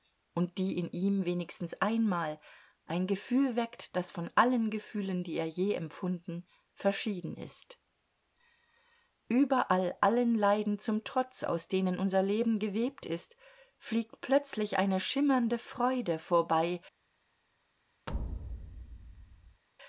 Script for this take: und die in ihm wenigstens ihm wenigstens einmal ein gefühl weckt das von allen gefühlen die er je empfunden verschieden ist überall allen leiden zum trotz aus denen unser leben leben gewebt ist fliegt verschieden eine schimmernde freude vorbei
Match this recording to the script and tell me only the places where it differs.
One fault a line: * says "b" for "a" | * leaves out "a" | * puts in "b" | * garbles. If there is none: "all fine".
* leaves out "ihm wenigstens"
* leaves out "leben"
* says "plötzlich" for "verschieden"